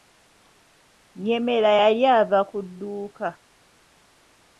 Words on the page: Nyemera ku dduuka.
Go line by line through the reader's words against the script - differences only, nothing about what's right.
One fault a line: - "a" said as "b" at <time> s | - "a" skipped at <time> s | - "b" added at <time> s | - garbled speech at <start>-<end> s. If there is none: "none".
- "yali ava" added at 1.8 s